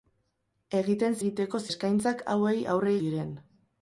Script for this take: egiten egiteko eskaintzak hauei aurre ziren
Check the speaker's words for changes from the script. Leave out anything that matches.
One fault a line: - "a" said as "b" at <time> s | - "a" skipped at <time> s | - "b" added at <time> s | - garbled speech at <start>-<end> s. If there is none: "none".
none